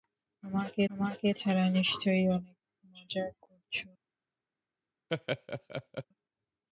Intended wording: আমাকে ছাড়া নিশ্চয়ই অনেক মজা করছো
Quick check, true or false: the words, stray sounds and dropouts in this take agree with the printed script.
false